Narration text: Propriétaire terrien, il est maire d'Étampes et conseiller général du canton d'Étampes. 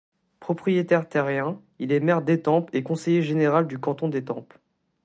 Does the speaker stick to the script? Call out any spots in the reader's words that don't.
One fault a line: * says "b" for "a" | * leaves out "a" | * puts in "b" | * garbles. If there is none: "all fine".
all fine